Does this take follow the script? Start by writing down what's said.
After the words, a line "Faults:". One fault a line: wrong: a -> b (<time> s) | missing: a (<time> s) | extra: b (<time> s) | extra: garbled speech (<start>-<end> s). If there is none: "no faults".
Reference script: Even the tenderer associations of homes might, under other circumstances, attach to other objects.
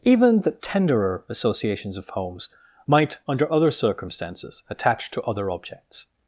Even the tenderer associations of homes might, under other circumstances, attach to other objects.
Faults:
no faults